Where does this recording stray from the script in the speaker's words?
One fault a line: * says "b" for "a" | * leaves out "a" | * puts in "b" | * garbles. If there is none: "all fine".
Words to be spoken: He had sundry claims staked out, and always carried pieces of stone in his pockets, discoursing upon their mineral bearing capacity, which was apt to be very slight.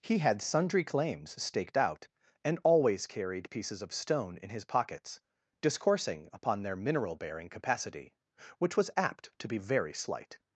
all fine